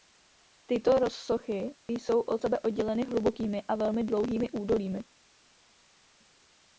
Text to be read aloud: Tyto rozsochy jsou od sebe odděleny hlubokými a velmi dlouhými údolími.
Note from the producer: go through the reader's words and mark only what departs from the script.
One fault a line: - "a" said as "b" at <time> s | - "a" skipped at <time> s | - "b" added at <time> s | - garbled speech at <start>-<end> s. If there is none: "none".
none